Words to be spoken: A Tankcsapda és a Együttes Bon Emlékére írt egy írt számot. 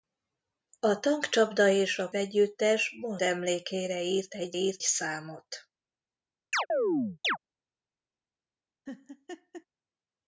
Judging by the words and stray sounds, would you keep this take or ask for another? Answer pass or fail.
fail